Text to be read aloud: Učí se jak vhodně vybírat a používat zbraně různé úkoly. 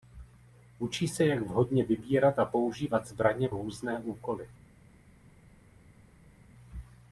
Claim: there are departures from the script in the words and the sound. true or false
false